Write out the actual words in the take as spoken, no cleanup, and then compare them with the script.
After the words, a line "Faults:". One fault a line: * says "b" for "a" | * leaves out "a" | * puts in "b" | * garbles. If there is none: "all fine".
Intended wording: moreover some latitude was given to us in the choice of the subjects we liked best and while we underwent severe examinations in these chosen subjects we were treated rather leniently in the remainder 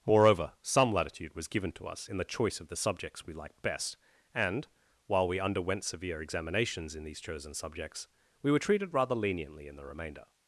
moreover some latitude was given to us in the choice of the subjects we liked best and while we underwent severe examinations in these chosen subjects we were treated rather leniently in the remainder
Faults:
all fine